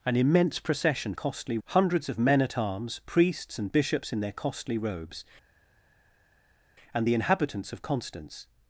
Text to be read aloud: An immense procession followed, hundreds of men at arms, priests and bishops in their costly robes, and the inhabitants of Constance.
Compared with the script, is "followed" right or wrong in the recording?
wrong